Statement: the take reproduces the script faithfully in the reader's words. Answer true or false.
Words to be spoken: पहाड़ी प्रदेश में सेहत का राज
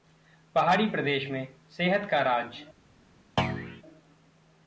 true